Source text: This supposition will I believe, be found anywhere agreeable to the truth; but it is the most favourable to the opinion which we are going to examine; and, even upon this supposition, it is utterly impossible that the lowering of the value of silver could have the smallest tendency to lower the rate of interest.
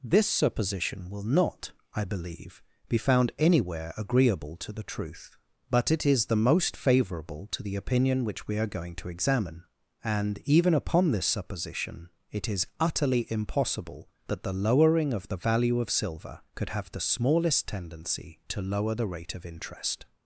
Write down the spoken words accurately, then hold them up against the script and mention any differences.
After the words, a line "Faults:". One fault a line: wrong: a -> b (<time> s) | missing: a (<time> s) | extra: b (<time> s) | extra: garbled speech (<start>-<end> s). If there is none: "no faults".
This supposition will not, I believe, be found anywhere agreeable to the truth; but it is the most favourable to the opinion which we are going to examine; and, even upon this supposition, it is utterly impossible that the lowering of the value of silver could have the smallest tendency to lower the rate of interest.
Faults:
extra: not (1.2 s)